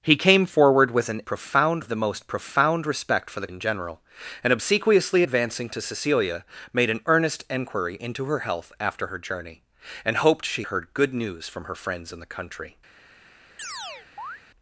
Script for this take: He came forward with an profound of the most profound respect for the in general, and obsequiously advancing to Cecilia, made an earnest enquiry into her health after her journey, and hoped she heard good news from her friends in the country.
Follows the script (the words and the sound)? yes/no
no